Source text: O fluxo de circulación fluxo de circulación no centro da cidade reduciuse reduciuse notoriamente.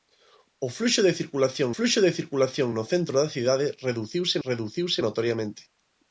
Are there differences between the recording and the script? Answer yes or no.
no